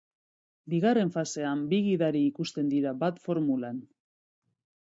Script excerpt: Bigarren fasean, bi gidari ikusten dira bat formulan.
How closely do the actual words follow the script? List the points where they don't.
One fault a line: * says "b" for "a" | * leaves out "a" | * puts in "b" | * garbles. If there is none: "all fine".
all fine